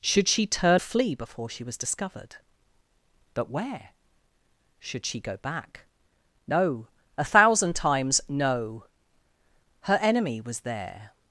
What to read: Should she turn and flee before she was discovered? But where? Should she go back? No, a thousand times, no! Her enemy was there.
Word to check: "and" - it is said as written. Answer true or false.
false